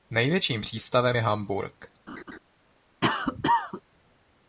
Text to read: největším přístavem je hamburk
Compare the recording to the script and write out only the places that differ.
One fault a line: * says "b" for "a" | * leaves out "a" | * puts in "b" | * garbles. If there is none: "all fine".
all fine